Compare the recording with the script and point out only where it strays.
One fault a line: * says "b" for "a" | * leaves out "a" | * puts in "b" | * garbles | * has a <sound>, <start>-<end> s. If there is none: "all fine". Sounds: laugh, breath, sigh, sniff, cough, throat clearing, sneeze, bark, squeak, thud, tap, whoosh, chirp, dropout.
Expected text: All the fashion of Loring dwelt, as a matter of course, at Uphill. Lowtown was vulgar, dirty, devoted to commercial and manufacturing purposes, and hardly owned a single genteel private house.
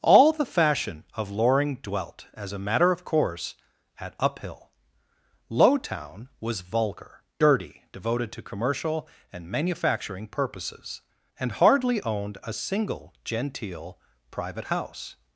all fine